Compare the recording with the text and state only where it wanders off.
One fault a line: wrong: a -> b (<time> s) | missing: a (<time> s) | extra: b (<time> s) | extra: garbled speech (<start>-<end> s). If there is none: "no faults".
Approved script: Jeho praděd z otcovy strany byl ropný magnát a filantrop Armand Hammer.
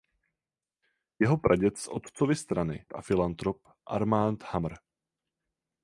missing: byl ropný magnát (2.9 s)